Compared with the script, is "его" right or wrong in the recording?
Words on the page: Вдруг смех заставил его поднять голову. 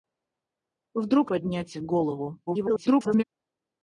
wrong